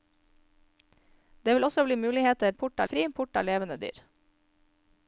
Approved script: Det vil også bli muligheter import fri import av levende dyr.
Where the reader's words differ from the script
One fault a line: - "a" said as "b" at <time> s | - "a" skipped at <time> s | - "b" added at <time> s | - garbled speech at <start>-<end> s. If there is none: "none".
none